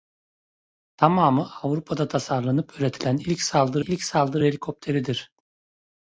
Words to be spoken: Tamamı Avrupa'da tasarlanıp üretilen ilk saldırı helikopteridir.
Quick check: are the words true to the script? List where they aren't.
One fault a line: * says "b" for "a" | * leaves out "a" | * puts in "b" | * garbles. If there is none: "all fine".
* puts in "ilk saldırı"